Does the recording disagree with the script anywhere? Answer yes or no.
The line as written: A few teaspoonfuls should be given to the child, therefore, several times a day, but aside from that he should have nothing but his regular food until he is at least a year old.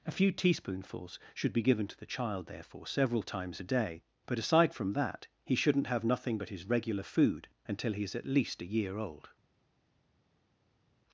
yes